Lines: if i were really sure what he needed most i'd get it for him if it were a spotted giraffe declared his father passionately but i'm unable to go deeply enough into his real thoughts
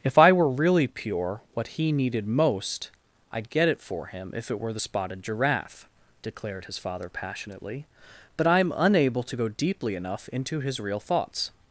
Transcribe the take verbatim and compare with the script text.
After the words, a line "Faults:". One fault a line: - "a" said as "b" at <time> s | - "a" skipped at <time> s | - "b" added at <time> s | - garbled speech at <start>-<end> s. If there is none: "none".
if i were really pure what he needed most i'd get it for him if it were the spotted giraffe declared his father passionately but i'm unable to go deeply enough into his real thoughts
Faults:
- "sure" said as "pure" at 0.9 s
- "a" said as "the" at 4.7 s